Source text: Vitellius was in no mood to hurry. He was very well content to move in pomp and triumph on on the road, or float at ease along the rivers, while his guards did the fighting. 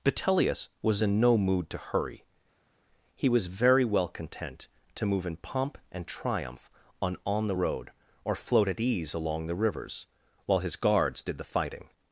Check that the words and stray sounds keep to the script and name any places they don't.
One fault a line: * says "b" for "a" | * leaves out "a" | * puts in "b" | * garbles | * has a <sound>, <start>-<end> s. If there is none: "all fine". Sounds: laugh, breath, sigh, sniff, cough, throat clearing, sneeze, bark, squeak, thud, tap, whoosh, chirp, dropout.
all fine